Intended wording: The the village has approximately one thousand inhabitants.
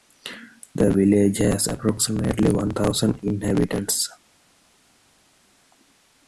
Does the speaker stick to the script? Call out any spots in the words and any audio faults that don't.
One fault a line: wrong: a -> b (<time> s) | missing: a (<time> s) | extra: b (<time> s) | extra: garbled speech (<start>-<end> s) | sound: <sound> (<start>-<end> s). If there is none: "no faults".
missing: the (0.9 s)